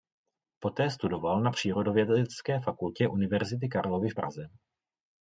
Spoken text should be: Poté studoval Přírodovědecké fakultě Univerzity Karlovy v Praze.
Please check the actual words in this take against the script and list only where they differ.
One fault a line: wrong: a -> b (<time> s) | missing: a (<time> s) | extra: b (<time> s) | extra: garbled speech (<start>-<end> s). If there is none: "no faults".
extra: na (1.4 s)